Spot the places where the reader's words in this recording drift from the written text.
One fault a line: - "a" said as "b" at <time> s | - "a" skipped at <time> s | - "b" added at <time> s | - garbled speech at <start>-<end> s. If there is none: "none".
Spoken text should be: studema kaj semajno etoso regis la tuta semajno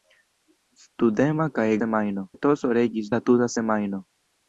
none